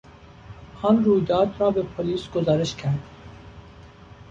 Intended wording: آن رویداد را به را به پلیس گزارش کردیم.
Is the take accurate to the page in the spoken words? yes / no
no